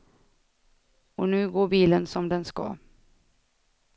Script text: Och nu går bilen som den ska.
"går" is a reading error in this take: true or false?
false